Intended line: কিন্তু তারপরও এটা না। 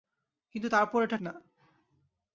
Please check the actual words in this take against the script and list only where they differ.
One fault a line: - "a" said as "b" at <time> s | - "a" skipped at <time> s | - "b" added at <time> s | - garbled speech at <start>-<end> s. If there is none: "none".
none